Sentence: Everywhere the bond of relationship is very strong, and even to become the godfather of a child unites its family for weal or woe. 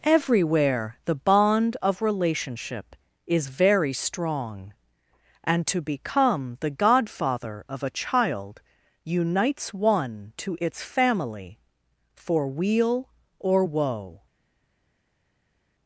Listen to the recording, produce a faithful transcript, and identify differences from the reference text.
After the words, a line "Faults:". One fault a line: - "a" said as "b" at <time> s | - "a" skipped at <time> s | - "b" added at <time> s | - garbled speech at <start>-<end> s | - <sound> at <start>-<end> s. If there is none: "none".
Everywhere the bond of relationship is very strong, and to become the godfather of a child unites one to its family for weal or woe.
Faults:
- "even" skipped at 5.7 s
- "one to" added at 9.8 s